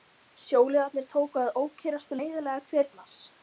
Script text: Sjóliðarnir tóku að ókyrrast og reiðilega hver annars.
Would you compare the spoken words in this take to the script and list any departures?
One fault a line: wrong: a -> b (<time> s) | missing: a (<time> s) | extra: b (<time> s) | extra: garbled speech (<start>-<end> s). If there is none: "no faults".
no faults